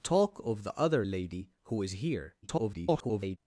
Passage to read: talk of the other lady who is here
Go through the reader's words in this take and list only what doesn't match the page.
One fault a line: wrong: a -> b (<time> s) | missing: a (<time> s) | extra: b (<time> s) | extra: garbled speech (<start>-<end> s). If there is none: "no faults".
extra: garbled speech (2.4-3.4 s)